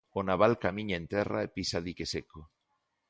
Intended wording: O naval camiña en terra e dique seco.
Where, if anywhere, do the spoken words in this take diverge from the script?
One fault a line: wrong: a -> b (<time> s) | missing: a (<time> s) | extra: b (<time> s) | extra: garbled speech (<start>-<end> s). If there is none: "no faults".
extra: pisa (1.6 s)